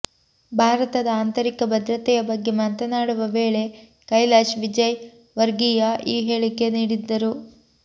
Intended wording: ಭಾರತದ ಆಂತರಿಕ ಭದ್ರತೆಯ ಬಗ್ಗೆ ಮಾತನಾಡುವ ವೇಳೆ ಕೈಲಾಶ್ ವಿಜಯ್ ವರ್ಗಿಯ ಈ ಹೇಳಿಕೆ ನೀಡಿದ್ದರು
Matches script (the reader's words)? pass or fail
pass